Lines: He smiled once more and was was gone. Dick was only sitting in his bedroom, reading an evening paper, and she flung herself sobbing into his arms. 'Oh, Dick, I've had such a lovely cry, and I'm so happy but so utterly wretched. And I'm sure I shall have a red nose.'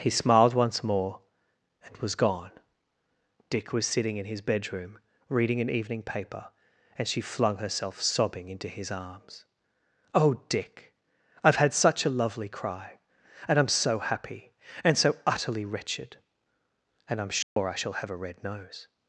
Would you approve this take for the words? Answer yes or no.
no